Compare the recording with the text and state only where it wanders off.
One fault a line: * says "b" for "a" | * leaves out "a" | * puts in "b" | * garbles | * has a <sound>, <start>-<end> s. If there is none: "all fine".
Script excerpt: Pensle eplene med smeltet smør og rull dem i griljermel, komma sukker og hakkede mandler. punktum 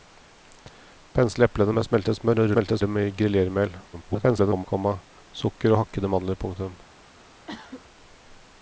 * says "smeltet" for "rull"
* garbles
* has a cough, 7.5-7.8 s